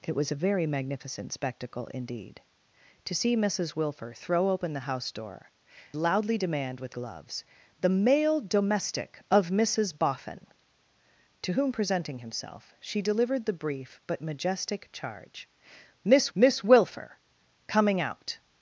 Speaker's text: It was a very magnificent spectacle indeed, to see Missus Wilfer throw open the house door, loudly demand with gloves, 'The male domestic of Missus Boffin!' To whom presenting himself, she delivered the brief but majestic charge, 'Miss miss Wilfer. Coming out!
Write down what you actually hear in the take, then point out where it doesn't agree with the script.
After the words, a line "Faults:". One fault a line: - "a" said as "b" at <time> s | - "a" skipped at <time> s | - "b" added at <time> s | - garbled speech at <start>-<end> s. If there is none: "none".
It was a very magnificent spectacle indeed, to see Missus Wilfer throw open the house door, loudly demand with gloves, 'The male domestic of Missus Boffin!' To whom presenting himself, she delivered the brief but majestic charge, 'Miss miss Wilfer. Coming out!
Faults:
none